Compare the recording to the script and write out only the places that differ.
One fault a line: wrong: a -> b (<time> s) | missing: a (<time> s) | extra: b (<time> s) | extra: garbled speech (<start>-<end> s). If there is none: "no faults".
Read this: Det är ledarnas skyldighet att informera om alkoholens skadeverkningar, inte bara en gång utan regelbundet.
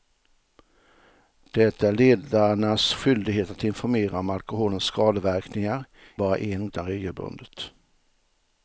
missing: inte (5.8 s)
missing: gång (6.7 s)